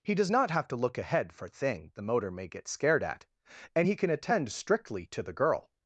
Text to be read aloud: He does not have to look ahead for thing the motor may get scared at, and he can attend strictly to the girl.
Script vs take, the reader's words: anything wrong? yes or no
no